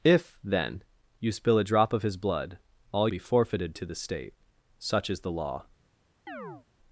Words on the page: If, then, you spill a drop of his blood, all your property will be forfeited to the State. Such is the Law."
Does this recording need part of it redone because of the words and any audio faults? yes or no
yes